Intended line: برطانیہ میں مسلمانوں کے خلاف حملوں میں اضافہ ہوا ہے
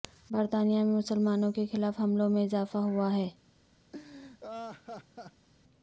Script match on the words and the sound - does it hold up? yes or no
no